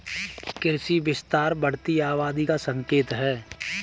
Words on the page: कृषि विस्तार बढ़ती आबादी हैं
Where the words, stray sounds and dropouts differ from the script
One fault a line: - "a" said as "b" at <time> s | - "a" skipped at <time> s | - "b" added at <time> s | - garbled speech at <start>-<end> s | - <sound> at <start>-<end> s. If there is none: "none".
- "का संकेत" added at 2.4 s